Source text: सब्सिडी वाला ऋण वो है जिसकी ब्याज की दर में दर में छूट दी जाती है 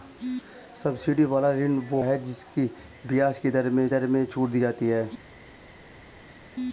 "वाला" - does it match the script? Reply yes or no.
yes